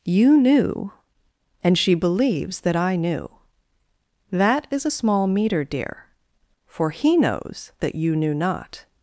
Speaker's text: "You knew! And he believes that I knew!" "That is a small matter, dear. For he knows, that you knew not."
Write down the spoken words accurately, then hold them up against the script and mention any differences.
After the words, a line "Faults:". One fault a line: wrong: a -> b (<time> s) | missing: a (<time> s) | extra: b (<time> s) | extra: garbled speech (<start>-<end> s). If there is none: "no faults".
"You knew! And she believes that I knew!" "That is a small meter, dear. For he knows, that you knew not."
Faults:
wrong: he -> she (1.8 s)
wrong: matter -> meter (5.3 s)